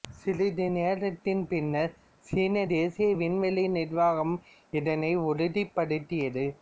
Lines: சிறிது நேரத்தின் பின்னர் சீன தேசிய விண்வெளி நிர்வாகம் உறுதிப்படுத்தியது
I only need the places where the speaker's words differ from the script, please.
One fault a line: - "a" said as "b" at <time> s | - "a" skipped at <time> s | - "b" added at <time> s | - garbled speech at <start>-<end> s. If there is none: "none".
- "இதனை" added at 4.7 s